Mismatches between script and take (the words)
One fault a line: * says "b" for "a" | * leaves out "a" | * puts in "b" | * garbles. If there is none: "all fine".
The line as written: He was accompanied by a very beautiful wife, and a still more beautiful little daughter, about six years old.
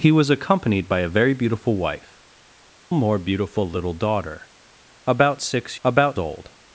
* leaves out "and a still"
* says "about" for "years"